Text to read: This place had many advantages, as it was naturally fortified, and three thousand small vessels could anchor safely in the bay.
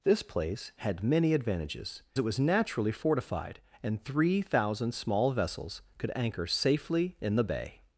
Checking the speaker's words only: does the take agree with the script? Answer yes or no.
no